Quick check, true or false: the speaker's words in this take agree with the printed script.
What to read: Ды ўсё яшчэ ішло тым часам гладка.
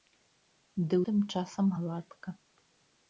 false